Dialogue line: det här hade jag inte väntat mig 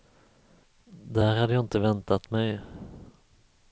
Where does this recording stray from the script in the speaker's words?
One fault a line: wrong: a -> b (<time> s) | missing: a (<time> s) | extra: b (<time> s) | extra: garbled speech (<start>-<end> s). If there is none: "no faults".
no faults